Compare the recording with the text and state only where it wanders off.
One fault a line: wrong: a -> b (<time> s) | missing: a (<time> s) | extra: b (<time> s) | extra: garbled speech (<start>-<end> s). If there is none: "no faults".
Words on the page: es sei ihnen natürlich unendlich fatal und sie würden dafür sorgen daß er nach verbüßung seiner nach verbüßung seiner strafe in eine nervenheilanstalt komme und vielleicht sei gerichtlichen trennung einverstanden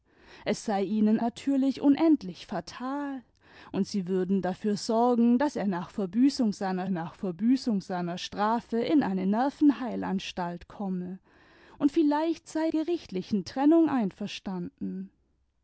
no faults